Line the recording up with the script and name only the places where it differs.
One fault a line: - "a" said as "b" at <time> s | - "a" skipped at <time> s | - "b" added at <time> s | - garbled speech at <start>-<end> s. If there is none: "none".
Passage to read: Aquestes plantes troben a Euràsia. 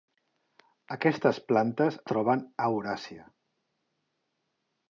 none